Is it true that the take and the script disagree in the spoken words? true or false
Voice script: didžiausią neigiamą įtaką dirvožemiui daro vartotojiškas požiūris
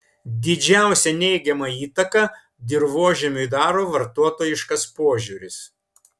false